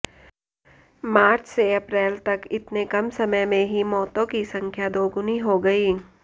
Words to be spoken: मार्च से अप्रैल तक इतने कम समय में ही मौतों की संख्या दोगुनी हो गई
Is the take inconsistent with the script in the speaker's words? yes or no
no